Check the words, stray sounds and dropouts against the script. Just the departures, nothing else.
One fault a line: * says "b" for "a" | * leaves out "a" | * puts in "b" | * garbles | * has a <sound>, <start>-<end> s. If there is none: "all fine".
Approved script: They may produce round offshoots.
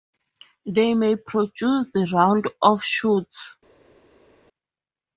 all fine